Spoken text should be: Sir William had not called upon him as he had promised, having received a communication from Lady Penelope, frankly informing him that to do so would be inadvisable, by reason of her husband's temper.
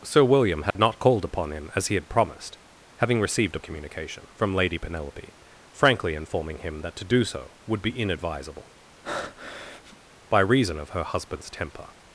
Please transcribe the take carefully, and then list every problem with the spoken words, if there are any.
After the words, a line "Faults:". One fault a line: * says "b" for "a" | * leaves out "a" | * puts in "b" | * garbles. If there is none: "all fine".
Sir William had not called upon him as he had promised, having received a communication from Lady Penelope, frankly informing him that to do so would be inadvisable, by reason of her husband's temper.
Faults:
all fine